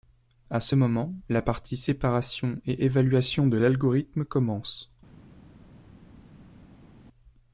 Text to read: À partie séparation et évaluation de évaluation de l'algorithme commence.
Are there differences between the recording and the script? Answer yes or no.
yes